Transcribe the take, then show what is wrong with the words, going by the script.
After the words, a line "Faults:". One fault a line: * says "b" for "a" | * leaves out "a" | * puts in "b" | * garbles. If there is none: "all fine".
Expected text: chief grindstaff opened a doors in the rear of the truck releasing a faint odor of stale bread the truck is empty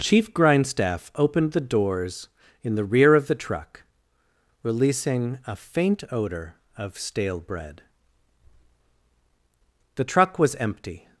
chief grindstaff opened the doors in the rear of the truck releasing a faint odor of stale bread the truck was empty
Faults:
* says "the" for "a"
* says "was" for "is"